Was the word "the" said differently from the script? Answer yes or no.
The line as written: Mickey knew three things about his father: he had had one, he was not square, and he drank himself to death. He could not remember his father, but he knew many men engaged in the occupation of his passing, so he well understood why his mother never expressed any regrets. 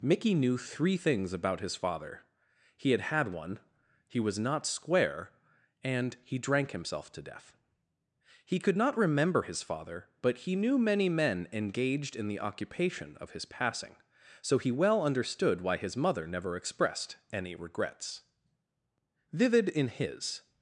no